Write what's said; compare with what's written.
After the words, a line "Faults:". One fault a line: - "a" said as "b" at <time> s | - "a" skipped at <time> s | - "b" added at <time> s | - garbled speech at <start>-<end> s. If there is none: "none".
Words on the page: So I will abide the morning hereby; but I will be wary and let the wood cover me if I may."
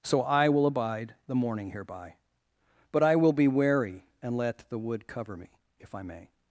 So I will abide the morning hereby; but I will be wary and let the wood cover me if I may."
Faults:
none